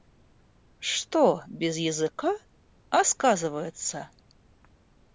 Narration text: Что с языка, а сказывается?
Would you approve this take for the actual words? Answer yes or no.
no